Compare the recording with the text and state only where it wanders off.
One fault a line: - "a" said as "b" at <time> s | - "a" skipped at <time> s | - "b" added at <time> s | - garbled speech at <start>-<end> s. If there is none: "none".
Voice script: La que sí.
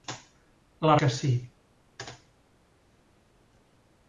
none